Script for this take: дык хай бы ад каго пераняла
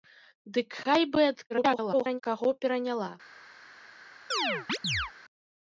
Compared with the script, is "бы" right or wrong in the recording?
right